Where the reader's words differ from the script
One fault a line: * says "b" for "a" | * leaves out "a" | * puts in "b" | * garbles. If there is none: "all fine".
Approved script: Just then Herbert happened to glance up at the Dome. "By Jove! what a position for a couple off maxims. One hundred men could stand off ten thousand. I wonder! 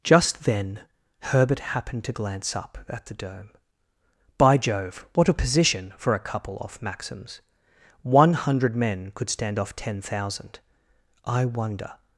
all fine